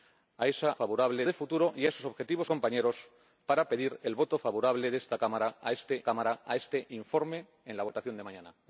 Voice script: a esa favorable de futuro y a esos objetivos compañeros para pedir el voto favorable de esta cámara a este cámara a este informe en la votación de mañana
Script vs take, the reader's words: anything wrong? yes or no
no